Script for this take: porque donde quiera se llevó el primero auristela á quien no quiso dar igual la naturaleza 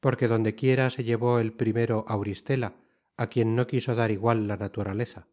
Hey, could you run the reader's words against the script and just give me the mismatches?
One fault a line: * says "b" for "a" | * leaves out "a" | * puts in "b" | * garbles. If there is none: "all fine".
all fine